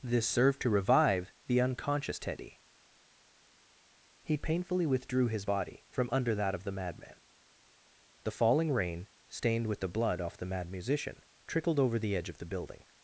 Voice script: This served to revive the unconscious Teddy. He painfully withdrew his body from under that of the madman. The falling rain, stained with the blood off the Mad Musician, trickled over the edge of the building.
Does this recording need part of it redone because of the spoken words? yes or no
no